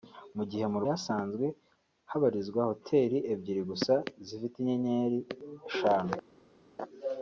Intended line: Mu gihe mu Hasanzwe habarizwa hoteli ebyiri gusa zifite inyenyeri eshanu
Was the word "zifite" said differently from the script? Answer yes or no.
no